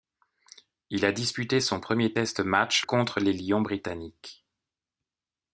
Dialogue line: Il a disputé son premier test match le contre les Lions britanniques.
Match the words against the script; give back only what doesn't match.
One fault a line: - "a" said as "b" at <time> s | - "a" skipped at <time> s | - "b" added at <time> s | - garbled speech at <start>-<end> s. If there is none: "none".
- "le" skipped at 2.8 s